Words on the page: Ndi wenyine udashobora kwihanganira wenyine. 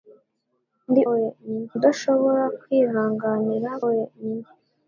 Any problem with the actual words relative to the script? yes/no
no